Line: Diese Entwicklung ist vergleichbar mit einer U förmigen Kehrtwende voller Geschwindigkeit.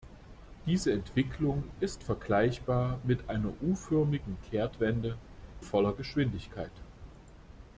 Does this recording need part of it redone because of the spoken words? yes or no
no